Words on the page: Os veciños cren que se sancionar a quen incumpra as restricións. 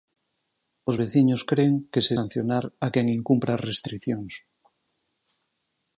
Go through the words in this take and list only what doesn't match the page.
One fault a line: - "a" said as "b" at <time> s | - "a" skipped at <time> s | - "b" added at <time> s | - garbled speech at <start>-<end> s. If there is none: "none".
none